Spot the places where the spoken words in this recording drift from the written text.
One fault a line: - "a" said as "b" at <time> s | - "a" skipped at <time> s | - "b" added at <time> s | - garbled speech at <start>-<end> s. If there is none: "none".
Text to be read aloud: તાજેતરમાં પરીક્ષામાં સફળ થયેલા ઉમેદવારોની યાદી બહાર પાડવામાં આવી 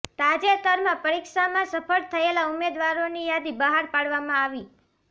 none